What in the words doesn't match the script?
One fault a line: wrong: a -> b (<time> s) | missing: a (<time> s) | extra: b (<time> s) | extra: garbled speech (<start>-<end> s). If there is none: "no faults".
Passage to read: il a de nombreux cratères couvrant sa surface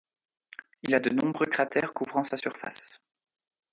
no faults